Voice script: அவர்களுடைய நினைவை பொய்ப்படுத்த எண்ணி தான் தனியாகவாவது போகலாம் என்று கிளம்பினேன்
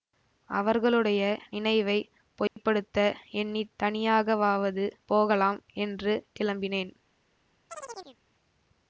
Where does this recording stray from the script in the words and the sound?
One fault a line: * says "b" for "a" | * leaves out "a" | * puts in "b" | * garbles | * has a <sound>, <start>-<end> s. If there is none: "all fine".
* has a dropout, 2.5-2.6 s
* leaves out "தான்"
* has a chirp, 7.7-8.2 s